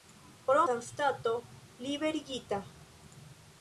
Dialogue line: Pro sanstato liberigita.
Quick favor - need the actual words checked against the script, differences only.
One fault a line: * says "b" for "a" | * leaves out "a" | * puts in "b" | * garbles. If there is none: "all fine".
all fine